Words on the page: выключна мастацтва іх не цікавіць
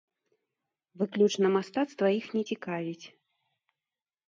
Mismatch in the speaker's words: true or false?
false